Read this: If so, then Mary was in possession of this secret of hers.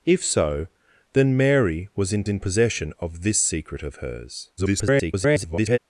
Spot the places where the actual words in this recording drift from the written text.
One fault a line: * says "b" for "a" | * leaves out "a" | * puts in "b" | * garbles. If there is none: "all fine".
* puts in "in"
* garbles